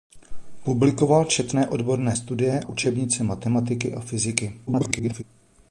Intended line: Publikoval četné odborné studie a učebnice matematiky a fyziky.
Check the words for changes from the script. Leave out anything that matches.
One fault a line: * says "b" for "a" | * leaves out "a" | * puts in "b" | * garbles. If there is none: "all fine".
* leaves out "a"
* garbles